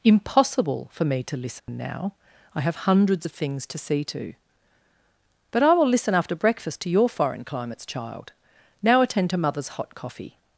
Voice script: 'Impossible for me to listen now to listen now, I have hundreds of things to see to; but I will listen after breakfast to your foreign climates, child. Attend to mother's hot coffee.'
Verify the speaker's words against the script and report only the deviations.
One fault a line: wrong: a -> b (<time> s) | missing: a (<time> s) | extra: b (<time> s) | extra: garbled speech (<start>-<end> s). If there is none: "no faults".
missing: to listen now (2.1 s)
extra: Now (8.8 s)